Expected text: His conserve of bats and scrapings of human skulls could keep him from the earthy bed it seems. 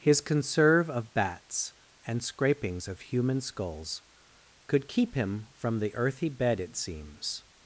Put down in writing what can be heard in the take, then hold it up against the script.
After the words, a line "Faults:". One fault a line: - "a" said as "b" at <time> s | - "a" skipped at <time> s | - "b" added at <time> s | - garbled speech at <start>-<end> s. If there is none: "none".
His conserve of bats and scrapings of human skulls could keep him from the earthy bed it seems.
Faults:
none